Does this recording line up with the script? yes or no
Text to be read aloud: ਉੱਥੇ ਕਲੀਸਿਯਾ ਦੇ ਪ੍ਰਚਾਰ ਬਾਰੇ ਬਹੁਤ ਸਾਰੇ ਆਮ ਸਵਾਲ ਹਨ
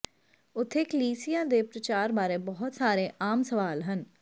yes